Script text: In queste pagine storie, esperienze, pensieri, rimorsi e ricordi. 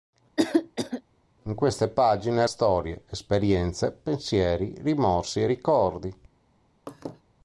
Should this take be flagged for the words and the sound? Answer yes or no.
yes